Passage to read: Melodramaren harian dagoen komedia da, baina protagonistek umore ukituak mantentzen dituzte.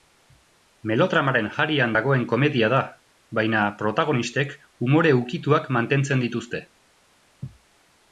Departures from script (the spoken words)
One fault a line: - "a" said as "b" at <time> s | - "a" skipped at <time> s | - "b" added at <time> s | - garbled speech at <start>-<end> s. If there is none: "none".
none